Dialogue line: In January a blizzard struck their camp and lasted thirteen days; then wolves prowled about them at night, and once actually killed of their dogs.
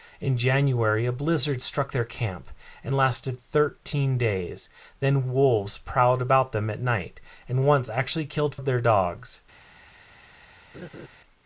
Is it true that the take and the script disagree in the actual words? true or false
false